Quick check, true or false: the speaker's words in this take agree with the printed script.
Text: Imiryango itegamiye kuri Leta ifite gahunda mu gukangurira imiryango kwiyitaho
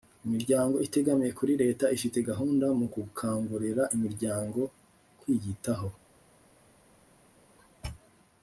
true